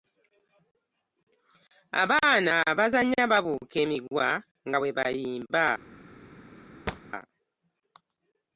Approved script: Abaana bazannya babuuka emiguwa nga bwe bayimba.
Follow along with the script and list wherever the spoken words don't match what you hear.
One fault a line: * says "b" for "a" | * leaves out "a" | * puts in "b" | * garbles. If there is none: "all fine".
all fine